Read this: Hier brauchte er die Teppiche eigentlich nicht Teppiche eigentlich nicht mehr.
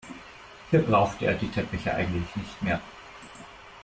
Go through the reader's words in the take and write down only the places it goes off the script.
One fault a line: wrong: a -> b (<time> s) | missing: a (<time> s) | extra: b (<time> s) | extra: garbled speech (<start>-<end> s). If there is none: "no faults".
missing: Teppiche eigentlich nicht (2.6 s)